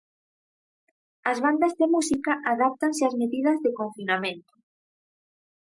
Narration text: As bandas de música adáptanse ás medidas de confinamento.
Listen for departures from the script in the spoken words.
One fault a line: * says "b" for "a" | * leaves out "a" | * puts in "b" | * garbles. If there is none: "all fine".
all fine